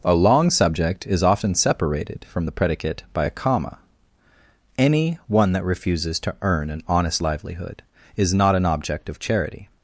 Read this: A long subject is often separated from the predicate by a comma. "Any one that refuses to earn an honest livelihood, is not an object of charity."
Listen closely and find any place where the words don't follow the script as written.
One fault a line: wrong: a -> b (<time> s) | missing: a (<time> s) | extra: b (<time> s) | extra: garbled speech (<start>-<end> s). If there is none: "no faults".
no faults